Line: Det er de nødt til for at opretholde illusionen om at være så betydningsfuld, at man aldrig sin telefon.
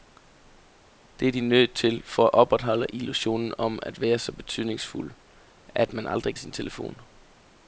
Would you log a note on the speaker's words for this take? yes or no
no